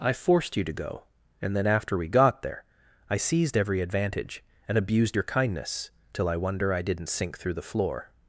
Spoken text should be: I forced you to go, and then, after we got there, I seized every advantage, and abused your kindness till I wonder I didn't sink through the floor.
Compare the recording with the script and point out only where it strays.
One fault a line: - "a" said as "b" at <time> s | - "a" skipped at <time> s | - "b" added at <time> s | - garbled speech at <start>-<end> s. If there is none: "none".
none